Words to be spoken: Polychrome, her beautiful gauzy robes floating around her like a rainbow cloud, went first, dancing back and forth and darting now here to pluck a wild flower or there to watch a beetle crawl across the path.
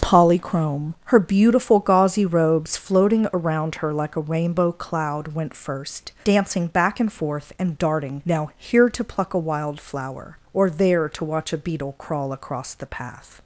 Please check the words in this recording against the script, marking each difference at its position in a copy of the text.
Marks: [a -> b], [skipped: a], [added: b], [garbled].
Polychrome, her beautiful gauzy robes floating around her like a rainbow cloud, went first, dancing back and forth and darting now here to pluck a wild flower or there to watch a beetle crawl across the path.